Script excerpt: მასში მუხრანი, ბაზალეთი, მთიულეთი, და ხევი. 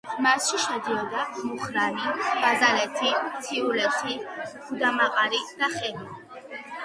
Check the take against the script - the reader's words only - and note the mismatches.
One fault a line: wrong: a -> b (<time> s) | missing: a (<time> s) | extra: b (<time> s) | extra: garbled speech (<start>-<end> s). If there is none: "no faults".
extra: შედიოდა (0.6 s)
extra: გუდამაყარი (4.7 s)